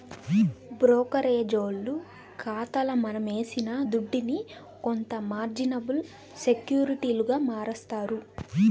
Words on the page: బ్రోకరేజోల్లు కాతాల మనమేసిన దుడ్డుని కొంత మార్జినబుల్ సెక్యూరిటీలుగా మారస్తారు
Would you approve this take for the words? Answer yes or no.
yes